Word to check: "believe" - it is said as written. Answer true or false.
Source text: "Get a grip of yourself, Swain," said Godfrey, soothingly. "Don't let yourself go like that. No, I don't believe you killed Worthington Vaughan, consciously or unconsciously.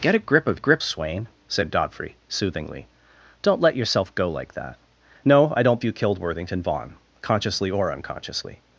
false